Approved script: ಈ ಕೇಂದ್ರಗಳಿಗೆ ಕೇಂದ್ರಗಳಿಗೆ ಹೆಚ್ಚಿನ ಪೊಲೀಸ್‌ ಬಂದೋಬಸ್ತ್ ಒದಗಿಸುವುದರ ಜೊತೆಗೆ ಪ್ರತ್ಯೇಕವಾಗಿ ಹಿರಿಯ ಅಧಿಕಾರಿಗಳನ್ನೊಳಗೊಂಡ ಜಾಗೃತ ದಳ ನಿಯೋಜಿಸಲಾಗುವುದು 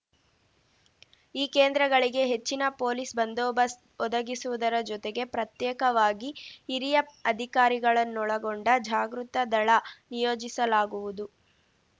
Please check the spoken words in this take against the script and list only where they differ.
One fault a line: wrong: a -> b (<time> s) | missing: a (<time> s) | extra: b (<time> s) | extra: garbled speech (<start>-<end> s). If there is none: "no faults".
missing: ಕೇಂದ್ರಗಳಿಗೆ (2.2 s)